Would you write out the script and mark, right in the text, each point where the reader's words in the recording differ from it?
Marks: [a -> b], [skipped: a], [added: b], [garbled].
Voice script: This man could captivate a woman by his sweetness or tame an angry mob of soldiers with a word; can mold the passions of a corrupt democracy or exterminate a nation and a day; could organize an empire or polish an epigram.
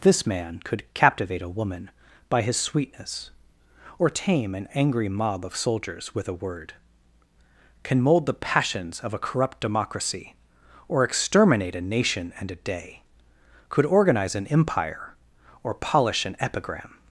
This man could captivate a woman by his sweetness or tame an angry mob of soldiers with a word; can mold the passions of a corrupt democracy or exterminate a nation and a day; could organize an empire or polish an epigram.